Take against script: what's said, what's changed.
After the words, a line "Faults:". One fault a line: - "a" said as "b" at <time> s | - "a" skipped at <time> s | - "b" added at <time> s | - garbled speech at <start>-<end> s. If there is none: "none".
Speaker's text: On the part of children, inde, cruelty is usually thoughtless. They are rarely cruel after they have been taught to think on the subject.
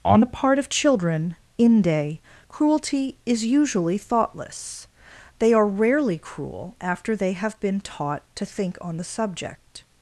On the part of children, inde, cruelty is usually thoughtless. They are rarely cruel after they have been taught to think on the subject.
Faults:
none